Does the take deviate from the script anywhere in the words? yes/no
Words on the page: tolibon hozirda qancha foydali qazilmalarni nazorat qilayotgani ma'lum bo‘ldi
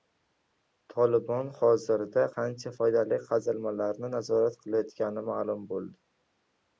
no